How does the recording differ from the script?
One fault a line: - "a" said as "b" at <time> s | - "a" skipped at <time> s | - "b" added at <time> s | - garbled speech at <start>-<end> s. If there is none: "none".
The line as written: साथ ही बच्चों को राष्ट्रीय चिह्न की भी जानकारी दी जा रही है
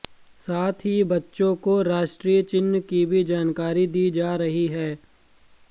none